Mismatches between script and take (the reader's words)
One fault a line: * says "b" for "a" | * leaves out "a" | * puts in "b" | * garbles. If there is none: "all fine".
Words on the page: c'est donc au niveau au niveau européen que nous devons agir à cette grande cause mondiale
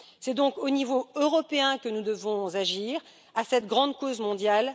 * leaves out "au niveau"